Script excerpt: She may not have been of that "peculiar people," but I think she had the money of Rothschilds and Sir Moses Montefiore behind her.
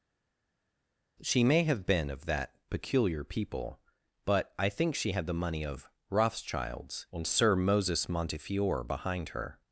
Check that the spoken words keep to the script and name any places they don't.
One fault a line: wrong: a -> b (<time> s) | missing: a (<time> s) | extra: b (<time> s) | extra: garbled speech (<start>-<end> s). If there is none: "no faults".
missing: not (1.6 s)